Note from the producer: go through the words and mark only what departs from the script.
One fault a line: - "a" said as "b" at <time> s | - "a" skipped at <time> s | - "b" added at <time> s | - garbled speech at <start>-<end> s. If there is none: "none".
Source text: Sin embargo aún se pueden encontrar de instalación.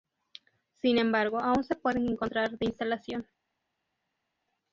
none